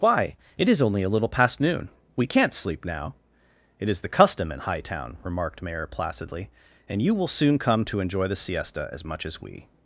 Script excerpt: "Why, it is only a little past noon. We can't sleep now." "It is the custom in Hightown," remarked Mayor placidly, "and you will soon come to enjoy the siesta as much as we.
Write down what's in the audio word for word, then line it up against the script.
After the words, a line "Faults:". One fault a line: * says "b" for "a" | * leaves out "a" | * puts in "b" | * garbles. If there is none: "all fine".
"Why, it is only a little past noon. We can't sleep now." "It is the custom in Hightown," remarked Mayor placidly, "and you will soon come to enjoy the siesta as much as we.
Faults:
all fine